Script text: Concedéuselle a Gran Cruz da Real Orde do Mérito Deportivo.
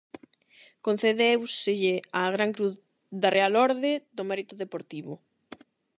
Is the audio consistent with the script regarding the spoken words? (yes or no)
yes